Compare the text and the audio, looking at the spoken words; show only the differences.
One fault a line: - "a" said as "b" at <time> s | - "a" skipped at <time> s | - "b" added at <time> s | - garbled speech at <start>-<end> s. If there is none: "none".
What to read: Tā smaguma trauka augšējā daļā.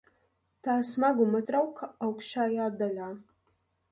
none